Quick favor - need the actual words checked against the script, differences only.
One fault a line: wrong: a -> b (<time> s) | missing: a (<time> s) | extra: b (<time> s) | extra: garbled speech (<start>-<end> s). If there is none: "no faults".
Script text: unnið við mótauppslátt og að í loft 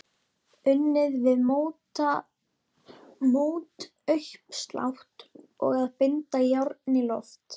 extra: binda járn (6.0 s)